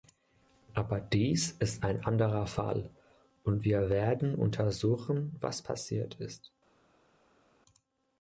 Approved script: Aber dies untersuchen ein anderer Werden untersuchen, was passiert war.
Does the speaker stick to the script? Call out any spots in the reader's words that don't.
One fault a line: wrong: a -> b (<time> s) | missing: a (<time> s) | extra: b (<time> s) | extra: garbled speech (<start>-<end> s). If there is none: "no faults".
wrong: untersuchen -> ist (1.6 s)
extra: Fall und wir (2.5 s)
wrong: war -> ist (6.2 s)